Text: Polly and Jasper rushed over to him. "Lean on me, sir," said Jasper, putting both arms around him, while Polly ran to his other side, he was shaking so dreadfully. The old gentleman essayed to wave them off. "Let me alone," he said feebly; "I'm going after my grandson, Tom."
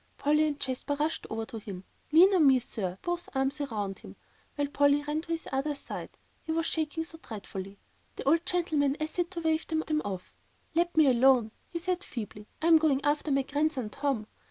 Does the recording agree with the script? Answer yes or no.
no